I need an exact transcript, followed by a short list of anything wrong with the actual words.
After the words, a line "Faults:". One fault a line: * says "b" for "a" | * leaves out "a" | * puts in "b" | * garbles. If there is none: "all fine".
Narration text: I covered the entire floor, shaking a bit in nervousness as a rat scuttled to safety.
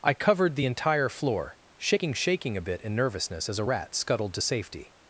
I covered the entire floor, shaking shaking a bit in nervousness as a rat scuttled to safety.
Faults:
* puts in "shaking"